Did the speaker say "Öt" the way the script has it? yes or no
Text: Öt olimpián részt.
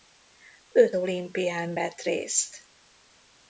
yes